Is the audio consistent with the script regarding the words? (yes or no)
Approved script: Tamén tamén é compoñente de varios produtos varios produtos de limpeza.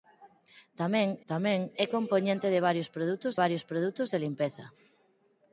yes